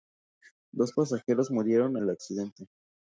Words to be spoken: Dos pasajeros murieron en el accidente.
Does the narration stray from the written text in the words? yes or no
yes